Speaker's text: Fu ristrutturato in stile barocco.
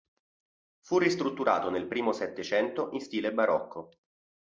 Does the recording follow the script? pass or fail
fail